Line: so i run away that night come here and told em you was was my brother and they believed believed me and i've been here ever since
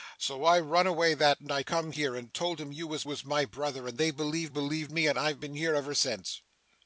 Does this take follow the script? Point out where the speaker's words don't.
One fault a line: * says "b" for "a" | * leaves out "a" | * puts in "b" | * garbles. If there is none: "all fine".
all fine